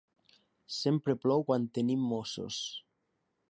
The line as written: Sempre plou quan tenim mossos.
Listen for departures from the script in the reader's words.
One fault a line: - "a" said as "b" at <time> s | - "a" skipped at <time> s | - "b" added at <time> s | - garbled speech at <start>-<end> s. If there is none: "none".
none